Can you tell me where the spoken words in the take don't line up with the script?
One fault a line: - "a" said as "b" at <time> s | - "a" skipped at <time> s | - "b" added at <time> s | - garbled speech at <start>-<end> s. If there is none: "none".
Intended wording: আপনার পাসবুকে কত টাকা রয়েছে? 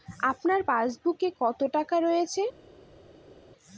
none